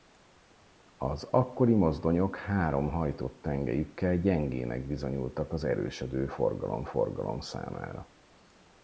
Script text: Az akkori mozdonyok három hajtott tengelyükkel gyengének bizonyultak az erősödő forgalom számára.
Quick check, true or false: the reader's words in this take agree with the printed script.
false